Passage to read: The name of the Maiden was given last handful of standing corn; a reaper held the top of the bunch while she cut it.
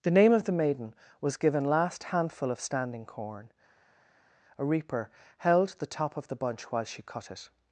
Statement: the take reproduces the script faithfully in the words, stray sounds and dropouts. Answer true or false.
true